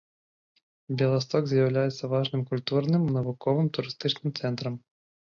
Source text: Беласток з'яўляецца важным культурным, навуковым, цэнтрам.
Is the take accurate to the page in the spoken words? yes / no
no